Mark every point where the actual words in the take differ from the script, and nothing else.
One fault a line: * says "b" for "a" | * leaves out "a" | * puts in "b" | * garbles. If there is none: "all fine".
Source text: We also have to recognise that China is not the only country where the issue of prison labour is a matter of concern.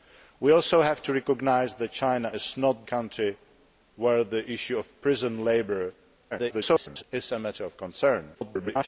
* leaves out "the only"
* garbles
* garbles